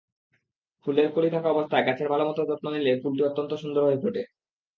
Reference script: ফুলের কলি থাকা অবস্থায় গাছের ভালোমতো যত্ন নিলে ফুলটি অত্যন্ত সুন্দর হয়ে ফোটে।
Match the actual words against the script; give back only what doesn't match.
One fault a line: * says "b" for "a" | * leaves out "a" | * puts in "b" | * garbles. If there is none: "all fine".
all fine